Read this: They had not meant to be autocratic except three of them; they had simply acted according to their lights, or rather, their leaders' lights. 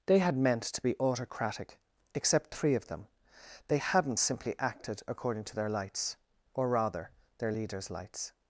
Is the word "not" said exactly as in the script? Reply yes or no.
no